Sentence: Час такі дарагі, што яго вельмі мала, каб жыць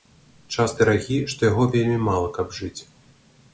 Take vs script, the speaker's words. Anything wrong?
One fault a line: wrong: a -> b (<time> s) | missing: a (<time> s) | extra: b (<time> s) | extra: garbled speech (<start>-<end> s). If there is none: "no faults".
missing: такі (0.7 s)